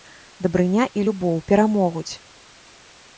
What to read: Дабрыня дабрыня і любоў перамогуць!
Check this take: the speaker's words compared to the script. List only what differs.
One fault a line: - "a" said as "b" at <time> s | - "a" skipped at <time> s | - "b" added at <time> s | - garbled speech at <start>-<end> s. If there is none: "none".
- "дабрыня" skipped at 0.9 s